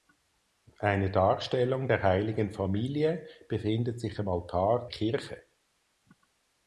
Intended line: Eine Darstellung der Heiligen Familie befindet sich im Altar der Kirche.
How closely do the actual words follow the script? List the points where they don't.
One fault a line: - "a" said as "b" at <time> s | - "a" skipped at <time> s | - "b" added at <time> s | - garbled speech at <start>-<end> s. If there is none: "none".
- "der" skipped at 4.9 s